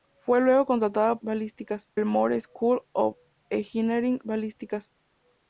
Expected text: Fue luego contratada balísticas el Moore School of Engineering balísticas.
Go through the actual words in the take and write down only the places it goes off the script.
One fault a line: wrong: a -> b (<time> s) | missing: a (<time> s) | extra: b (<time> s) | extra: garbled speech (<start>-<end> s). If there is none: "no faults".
no faults